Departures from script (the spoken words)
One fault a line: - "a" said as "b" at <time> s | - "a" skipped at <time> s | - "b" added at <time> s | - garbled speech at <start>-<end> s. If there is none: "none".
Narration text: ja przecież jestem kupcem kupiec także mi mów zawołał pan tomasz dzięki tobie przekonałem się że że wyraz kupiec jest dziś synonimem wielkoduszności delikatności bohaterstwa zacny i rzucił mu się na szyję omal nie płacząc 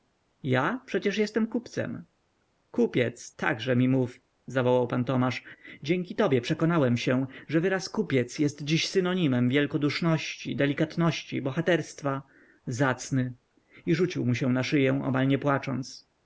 - "że" skipped at 7.6 s